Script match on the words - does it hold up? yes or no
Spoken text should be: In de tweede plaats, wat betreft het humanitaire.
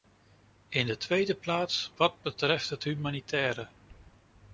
yes